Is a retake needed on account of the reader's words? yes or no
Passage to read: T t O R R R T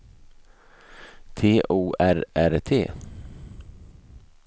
yes